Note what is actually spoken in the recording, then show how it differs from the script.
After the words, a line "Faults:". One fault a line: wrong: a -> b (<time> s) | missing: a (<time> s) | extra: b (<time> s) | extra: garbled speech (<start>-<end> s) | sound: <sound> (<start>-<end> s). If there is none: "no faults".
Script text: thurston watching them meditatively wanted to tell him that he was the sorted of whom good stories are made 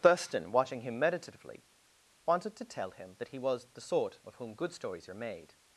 thurston watching him meditatively wanted to tell him that he was the sort of whom good stories are made
Faults:
wrong: them -> him (0.8 s)
wrong: sorted -> sort (3.8 s)